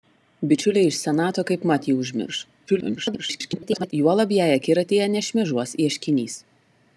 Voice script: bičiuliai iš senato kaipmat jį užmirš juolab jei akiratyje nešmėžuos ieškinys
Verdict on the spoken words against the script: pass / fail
fail